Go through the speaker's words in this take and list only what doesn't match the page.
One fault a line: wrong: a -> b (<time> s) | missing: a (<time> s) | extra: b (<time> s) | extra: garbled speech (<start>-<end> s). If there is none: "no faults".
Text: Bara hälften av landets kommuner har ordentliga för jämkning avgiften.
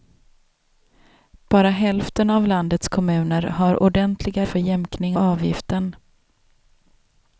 no faults